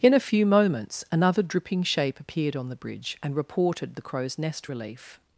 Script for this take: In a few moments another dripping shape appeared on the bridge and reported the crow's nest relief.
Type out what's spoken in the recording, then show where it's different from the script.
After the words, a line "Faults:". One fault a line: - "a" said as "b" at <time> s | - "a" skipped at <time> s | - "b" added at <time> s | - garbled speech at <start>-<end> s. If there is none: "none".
In a few moments another dripping shape appeared on the bridge and reported the crow's nest relief.
Faults:
none